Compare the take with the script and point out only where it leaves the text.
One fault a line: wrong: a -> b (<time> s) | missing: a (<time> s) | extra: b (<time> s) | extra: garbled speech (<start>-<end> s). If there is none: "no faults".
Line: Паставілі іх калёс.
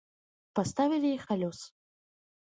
no faults